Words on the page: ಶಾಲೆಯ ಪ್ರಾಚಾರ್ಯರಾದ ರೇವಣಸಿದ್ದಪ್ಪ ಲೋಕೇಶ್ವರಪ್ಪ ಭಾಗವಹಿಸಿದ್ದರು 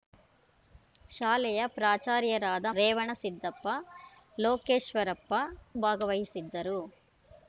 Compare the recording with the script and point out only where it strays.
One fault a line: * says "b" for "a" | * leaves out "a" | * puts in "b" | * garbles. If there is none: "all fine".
all fine